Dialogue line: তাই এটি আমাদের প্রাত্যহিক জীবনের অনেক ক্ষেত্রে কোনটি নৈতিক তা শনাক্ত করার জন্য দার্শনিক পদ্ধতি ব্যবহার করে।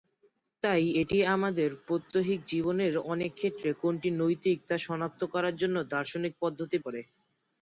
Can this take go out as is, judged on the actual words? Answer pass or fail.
fail